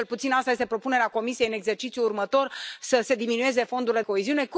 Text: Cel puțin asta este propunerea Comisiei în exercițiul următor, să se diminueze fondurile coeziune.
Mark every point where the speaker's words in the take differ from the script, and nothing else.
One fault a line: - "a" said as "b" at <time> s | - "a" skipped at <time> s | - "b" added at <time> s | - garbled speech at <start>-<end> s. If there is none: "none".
none